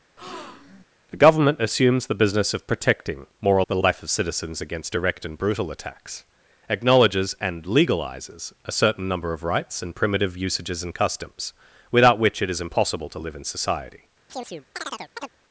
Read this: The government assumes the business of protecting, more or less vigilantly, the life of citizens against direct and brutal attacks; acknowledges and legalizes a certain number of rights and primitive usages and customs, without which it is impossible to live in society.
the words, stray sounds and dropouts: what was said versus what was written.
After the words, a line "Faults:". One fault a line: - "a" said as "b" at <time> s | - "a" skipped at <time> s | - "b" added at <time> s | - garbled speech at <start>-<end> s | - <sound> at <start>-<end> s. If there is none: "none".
The government assumes the business of protecting, more or the life of citizens against direct and brutal attacks; acknowledges and legalizes a certain number of rights and primitive usages and customs, without which it is impossible to live in society.
Faults:
- breath at 0.2-0.8 s
- "less vigilantly" skipped at 3.6 s
- chirp at 14.3-15.3 s